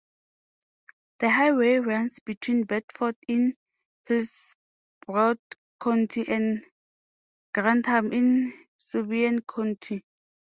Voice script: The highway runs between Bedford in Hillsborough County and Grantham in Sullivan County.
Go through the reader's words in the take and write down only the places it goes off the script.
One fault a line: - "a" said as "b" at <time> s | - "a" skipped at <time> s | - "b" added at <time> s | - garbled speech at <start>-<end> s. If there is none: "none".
none